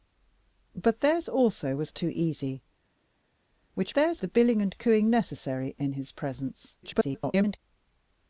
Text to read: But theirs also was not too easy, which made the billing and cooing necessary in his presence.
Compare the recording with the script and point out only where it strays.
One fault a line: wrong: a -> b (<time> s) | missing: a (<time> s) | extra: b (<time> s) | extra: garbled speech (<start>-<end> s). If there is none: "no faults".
missing: not (1.9 s)
wrong: made -> theirs (3.9 s)
extra: garbled speech (6.8-7.6 s)